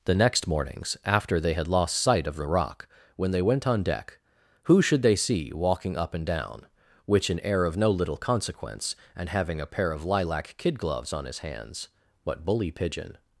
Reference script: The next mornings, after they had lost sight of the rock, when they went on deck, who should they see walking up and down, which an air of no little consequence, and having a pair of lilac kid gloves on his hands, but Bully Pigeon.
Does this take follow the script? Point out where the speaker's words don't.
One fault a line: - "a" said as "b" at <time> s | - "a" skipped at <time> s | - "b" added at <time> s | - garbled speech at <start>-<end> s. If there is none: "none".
none